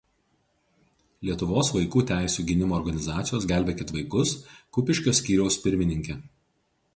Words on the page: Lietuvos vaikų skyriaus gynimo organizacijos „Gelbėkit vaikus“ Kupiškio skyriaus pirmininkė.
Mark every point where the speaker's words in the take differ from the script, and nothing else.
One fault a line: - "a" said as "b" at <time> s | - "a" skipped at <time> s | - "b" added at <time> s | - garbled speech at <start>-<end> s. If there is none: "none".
- "skyriaus" said as "teisių" at 2.1 s